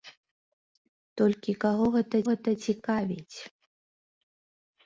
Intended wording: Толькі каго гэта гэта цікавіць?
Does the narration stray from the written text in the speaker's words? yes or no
no